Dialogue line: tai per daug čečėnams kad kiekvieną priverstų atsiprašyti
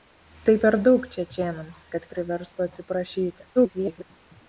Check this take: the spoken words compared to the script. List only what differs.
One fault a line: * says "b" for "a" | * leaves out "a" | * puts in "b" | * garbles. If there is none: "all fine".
* leaves out "kiekvieną"
* garbles